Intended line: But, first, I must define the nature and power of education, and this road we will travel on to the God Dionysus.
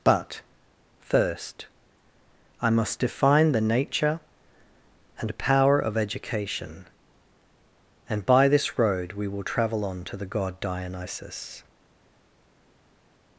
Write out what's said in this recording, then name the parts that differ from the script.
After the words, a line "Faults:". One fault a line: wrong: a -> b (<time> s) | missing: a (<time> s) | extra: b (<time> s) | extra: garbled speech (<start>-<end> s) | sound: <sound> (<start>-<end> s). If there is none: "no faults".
But, first, I must define the nature and power of education, and by this road we will travel on to the God Dionysus.
Faults:
extra: by (8.2 s)